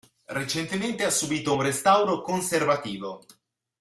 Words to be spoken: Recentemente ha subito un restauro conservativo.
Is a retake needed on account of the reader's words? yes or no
no